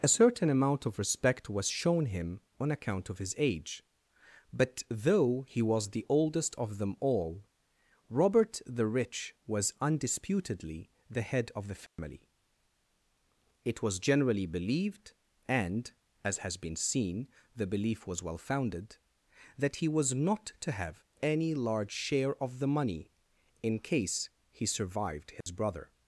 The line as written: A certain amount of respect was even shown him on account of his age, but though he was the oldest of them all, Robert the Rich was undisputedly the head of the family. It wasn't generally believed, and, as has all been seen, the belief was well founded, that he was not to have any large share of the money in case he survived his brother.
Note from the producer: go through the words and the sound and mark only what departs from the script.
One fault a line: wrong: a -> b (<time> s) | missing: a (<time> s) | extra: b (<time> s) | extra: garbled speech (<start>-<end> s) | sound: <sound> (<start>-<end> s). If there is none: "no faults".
missing: even (1.7 s)
sound: dropout (11.9-12.0 s)
wrong: wasn't -> was (13.8 s)
missing: all (16.6 s)
sound: dropout (25.4-25.5 s)